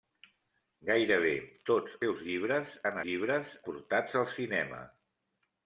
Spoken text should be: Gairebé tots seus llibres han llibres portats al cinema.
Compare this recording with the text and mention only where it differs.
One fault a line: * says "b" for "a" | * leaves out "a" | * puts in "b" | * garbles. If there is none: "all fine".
all fine